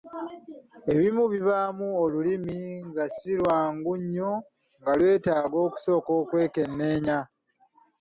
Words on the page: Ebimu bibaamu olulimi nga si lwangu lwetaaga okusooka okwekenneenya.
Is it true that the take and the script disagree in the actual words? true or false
true